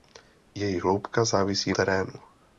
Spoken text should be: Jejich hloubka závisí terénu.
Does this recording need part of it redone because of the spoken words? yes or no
no